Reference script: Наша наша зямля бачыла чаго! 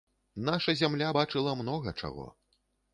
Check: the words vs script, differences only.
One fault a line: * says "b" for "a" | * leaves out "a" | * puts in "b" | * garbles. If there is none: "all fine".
* leaves out "наша"
* puts in "многа"